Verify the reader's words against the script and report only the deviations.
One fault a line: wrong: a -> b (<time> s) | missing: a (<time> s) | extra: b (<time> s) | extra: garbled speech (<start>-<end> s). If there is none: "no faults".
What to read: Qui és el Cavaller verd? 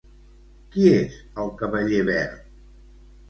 no faults